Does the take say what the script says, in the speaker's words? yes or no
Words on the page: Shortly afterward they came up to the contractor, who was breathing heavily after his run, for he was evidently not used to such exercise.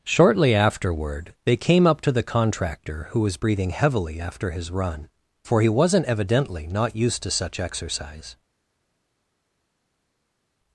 no